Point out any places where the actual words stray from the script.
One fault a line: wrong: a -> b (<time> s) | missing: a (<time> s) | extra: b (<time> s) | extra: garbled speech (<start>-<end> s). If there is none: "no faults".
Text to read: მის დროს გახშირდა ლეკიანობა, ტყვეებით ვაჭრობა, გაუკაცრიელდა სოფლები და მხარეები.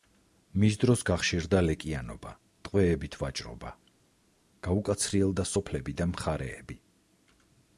no faults